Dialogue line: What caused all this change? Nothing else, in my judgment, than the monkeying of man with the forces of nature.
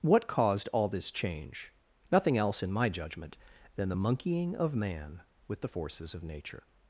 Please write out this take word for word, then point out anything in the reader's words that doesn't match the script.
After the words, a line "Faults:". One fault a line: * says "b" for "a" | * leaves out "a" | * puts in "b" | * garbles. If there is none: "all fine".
What caused all this change? Nothing else, in my judgment, than the monkeying of man with the forces of nature.
Faults:
all fine